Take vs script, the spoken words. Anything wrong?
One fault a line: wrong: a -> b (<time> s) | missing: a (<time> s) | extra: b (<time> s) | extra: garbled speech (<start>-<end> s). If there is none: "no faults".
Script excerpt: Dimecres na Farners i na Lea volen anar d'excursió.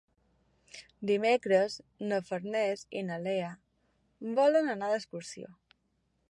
no faults